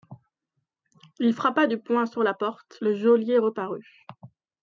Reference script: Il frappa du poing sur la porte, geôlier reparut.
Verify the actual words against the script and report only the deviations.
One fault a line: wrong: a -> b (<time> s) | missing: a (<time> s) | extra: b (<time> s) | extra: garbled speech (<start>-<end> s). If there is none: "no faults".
extra: le (2.8 s)